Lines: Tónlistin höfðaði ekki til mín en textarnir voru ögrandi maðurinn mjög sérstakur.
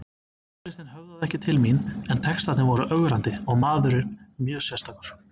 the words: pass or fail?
fail